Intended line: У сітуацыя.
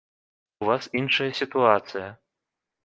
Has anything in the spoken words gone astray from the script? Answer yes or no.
yes